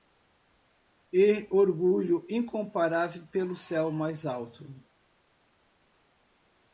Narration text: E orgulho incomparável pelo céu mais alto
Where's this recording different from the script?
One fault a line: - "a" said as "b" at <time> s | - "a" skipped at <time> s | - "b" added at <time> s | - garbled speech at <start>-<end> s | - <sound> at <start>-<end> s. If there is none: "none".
none